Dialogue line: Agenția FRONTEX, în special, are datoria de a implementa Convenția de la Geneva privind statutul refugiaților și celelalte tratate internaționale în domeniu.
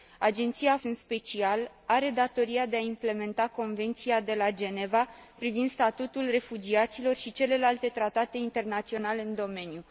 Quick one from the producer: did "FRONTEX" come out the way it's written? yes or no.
no